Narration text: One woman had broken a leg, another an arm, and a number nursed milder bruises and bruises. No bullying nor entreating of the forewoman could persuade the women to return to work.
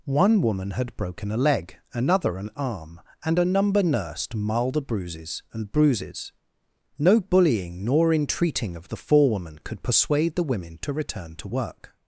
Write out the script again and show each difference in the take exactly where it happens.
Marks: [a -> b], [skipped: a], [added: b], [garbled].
One woman had broken a leg, another an arm, and a number nursed milder bruises and bruises. No bullying nor entreating of the forewoman could persuade the women to return to work.